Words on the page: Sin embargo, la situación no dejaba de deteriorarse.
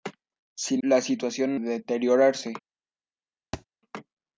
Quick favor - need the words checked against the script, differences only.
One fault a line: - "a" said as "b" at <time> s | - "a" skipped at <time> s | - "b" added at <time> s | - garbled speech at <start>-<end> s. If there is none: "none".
- "embargo" skipped at 0.8 s
- "no dejaba de" skipped at 1.6 s